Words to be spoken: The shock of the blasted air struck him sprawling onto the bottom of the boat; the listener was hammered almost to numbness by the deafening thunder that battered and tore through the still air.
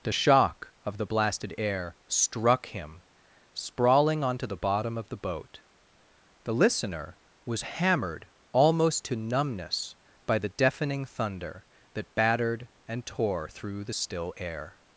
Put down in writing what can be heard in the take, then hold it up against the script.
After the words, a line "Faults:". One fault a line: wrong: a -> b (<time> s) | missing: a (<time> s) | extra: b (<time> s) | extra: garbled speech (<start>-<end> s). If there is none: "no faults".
The shock of the blasted air struck him sprawling onto the bottom of the boat; the listener was hammered almost to numbness by the deafening thunder that battered and tore through the still air.
Faults:
no faults